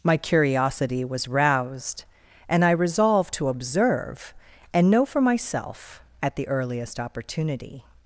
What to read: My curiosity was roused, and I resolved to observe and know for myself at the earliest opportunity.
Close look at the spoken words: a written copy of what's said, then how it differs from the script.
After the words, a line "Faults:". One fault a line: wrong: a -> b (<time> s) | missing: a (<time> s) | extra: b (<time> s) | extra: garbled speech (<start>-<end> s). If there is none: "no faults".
My curiosity was roused, and I resolved to observe and know for myself at the earliest opportunity.
Faults:
no faults